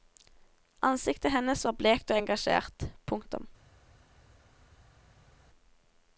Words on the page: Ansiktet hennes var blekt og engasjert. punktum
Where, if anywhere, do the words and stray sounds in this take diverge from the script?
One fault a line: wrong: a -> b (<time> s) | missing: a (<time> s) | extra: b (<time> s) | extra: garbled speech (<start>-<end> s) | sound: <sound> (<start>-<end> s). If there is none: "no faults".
no faults